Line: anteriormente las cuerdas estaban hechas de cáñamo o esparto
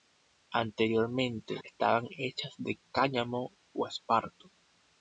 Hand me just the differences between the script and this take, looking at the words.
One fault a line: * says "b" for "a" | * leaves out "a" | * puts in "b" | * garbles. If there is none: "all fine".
* leaves out "las cuerdas"